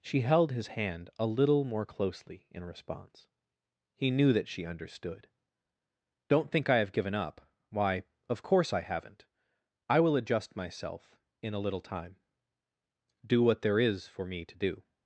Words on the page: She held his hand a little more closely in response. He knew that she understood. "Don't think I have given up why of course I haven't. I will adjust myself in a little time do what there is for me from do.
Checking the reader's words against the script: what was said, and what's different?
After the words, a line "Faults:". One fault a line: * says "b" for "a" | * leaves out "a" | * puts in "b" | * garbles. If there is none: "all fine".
She held his hand a little more closely in response. He knew that she understood. "Don't think I have given up why of course I haven't. I will adjust myself in a little time do what there is for me to do.
Faults:
* says "to" for "from"